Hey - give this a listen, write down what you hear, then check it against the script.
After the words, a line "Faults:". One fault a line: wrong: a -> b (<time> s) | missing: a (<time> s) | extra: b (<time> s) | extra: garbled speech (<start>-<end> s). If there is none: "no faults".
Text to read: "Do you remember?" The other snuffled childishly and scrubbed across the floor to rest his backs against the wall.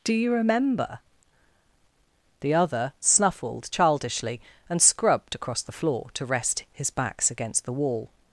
"Do you remember?" The other snuffled childishly and scrubbed across the floor to rest his backs against the wall.
Faults:
no faults